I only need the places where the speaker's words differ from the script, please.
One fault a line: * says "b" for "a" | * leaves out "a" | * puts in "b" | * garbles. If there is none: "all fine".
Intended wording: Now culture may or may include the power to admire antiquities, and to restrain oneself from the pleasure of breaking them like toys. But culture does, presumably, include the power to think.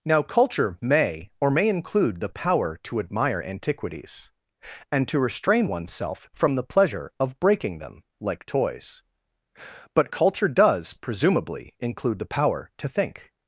all fine